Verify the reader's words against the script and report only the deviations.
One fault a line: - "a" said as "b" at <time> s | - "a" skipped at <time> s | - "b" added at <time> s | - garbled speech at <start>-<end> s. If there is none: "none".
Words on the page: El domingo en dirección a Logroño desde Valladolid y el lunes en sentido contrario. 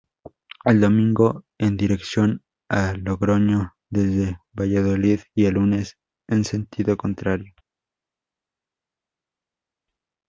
none